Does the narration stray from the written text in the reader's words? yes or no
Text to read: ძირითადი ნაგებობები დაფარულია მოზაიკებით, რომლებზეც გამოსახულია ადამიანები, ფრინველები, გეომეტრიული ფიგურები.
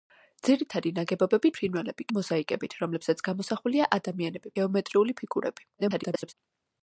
yes